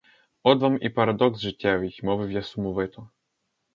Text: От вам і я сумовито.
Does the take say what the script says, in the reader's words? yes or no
no